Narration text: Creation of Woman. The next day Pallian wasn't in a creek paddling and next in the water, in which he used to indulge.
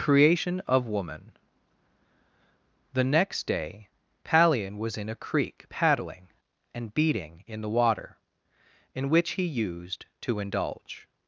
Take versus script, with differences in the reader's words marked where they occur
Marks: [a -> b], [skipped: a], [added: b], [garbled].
Creation of Woman. The next day Pallian [wasn't -> was] in a creek paddling and [next -> beating] in the water, in which he used to indulge.